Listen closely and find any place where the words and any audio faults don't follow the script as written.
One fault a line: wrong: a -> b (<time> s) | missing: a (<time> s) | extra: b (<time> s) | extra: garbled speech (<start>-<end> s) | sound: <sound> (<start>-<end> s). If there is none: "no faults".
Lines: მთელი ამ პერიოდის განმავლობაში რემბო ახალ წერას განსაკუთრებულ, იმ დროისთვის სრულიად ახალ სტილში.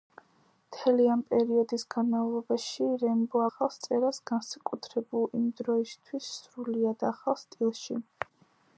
no faults